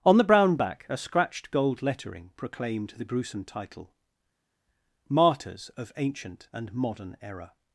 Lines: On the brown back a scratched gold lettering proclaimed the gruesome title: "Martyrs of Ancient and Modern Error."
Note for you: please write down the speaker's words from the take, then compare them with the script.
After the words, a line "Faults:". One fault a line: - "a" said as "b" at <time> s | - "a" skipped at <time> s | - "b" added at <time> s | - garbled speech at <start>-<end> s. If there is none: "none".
On the brown back a scratched gold lettering proclaimed the gruesome title: "Martyrs of Ancient and Modern Error."
Faults:
none